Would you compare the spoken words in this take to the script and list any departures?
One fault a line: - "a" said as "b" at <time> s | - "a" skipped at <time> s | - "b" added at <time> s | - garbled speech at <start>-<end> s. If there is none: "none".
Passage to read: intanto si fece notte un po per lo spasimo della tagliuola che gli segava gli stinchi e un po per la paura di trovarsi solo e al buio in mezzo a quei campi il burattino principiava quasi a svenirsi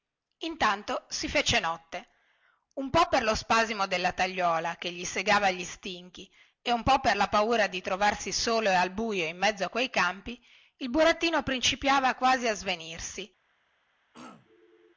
none